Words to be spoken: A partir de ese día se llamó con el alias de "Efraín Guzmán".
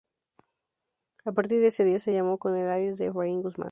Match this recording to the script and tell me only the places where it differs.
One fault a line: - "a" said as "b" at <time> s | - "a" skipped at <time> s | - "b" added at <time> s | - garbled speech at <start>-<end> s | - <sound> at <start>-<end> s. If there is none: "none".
none